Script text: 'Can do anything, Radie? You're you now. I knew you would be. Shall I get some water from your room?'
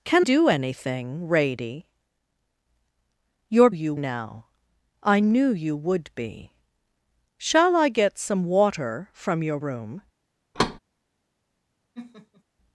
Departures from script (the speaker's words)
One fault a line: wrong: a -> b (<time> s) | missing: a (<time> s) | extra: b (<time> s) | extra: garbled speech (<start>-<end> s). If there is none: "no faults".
no faults